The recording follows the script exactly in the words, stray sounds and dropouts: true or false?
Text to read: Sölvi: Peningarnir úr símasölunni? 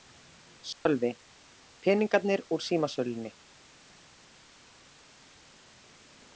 false